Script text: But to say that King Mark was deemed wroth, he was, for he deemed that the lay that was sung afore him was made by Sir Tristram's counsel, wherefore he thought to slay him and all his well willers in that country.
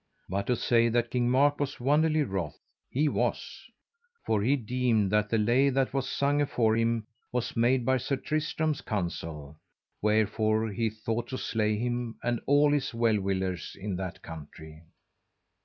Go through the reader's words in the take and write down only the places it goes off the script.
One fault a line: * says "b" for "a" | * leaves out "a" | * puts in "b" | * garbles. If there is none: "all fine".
* says "wonderly" for "deemed"